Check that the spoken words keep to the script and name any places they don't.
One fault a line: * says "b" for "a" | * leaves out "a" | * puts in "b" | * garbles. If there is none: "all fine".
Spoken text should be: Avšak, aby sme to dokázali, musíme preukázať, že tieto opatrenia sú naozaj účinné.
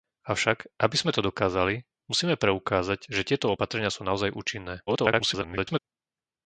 * garbles